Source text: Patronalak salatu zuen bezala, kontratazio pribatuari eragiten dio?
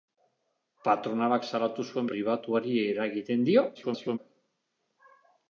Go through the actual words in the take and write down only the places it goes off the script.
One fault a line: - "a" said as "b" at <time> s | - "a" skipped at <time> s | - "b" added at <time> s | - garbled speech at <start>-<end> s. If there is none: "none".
- "bezala kontratazio" skipped at 2.1 s
- garbled speech at 3.7-4.2 s